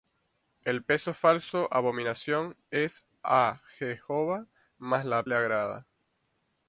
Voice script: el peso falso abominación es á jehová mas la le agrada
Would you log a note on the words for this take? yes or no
no